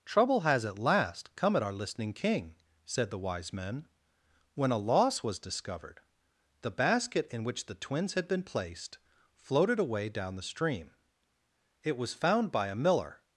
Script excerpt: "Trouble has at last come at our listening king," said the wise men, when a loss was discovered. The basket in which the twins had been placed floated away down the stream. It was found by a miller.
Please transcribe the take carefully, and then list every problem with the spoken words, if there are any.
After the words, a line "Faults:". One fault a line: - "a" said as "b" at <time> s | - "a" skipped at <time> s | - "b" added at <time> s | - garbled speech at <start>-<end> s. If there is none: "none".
"Trouble has at last come at our listening king," said the wise men, when a loss was discovered. The basket in which the twins had been placed floated away down the stream. It was found by a miller.
Faults:
none